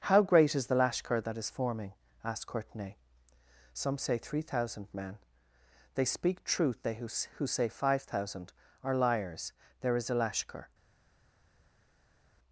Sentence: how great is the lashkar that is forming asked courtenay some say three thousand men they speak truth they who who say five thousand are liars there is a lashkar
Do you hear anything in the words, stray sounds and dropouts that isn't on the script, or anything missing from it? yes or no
no